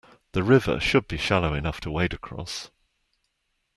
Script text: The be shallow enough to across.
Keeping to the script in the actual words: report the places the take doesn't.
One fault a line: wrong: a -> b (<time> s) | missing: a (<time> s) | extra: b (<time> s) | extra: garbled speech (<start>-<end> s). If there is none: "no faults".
extra: river should (0.4 s)
extra: wade (1.9 s)